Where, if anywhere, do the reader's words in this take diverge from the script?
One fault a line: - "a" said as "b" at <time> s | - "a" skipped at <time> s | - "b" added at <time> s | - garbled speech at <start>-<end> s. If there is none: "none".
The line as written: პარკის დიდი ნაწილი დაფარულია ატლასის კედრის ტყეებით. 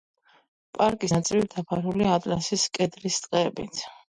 - "დიდი" skipped at 1.1 s